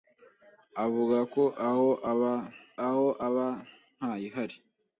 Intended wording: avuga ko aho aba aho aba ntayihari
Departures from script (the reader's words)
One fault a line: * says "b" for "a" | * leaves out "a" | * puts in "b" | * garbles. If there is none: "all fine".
all fine